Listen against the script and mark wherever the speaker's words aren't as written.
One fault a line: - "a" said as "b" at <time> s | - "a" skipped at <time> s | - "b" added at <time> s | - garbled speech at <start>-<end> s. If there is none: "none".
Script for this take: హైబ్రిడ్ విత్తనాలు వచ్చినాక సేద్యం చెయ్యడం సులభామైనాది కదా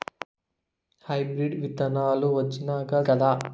- "సేద్యం చెయ్యడం సులభామైనాది" skipped at 3.0 s